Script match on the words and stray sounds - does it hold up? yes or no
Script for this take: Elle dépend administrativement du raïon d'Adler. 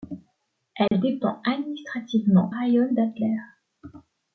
no